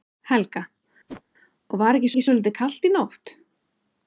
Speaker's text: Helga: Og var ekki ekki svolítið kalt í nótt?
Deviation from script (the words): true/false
false